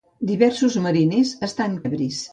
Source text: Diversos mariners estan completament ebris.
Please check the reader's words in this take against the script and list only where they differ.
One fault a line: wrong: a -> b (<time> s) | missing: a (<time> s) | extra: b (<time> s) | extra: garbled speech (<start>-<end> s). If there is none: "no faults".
missing: completament (1.8 s)